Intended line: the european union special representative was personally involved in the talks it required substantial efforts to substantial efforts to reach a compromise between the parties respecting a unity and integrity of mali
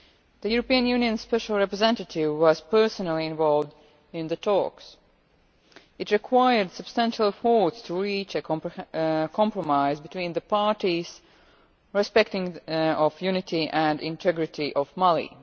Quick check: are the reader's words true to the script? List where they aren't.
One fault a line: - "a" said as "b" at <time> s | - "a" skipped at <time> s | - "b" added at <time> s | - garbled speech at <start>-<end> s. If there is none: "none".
- "substantial efforts to" skipped at 7.9 s
- "a" said as "the" at 12.7 s